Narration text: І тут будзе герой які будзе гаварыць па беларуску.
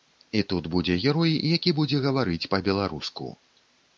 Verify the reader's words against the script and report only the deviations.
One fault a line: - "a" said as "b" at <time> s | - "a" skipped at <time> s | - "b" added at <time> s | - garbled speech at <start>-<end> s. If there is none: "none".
none